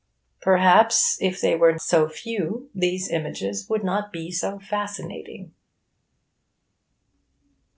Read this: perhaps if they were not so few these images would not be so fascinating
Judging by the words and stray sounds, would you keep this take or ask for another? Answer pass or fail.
fail